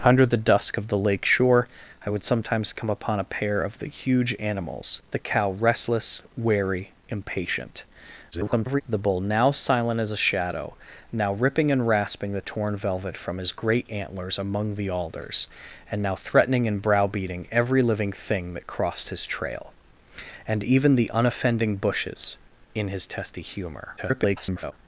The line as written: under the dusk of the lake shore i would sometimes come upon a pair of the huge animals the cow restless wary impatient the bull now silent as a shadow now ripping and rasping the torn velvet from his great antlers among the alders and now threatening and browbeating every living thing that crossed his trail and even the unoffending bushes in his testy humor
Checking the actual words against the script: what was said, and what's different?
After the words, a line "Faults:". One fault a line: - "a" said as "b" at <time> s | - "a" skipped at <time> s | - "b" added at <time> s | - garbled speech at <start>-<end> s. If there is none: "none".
under the dusk of the lake shore i would sometimes come upon a pair of the huge animals the cow restless wary impatient [garbled] the bull now silent as a shadow now ripping and rasping the torn velvet from his great antlers among the alders and now threatening and browbeating every living thing that crossed his trail and even the unoffending bushes in his testy humor [garbled]
Faults:
- garbled speech at 8.3-8.8 s
- garbled speech at 24.0-24.7 s